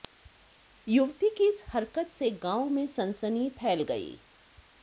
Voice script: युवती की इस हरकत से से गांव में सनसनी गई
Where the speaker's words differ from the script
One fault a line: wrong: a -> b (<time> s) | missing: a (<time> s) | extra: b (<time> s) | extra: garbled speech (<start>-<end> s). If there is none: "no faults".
missing: से (2.3 s)
extra: फैल (3.6 s)